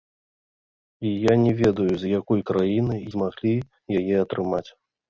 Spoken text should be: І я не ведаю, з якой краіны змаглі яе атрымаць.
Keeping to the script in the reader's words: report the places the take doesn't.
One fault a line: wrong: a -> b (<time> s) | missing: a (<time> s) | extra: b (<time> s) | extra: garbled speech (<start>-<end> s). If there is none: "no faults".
no faults